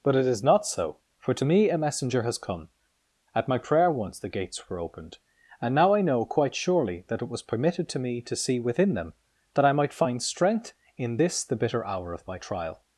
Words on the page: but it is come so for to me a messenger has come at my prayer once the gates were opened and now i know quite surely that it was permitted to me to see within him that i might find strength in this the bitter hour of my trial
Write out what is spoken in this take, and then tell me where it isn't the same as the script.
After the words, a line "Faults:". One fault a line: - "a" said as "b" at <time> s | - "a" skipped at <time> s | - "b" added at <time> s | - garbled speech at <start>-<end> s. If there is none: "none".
but it is not so for to me a messenger has come at my prayer once the gates were opened and now i know quite surely that it was permitted to me to see within them that i might find strength in this the bitter hour of my trial
Faults:
- "come" said as "not" at 0.4 s
- "him" said as "them" at 8.9 s